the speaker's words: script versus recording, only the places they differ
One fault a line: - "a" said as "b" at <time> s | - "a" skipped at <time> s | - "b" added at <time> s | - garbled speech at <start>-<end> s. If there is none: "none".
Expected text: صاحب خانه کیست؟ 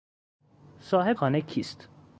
none